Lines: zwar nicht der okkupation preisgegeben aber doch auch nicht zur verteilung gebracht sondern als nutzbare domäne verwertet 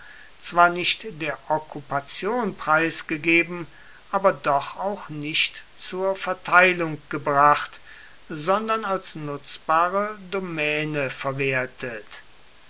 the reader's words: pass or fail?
pass